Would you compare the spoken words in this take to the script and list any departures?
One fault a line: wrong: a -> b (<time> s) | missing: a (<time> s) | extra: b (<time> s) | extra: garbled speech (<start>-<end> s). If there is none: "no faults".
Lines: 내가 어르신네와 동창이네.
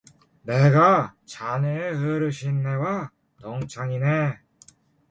extra: 자네의 (1.3 s)